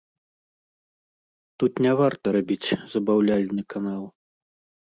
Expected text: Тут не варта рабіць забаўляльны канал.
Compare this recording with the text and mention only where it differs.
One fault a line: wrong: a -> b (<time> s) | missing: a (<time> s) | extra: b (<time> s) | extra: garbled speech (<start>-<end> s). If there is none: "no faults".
no faults